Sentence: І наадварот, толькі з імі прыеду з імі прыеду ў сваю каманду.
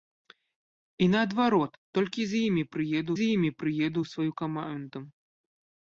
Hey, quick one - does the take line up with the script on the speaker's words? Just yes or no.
yes